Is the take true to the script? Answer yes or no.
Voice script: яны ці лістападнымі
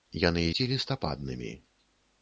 yes